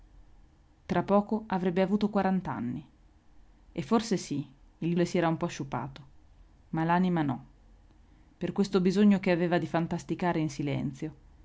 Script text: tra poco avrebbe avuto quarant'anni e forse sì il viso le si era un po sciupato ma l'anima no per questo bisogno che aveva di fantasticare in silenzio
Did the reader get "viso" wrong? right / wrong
wrong